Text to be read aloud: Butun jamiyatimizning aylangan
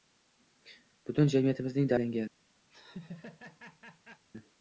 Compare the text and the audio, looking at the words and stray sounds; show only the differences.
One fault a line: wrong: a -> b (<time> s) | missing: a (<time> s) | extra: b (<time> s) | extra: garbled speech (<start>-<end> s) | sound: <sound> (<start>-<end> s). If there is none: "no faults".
sound: laugh (2.7-4.2 s)